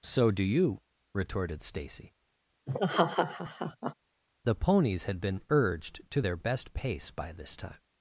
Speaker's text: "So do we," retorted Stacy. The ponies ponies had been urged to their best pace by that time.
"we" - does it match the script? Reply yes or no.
no